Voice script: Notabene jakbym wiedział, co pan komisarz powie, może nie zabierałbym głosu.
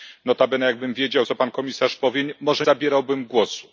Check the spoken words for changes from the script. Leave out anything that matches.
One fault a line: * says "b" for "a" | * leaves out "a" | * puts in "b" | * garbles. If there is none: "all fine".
* leaves out "nie"